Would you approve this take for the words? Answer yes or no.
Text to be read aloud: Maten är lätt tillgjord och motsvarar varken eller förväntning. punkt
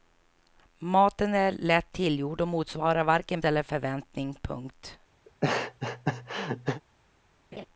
yes